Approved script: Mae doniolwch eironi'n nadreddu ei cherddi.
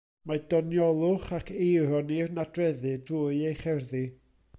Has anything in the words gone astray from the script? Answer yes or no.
yes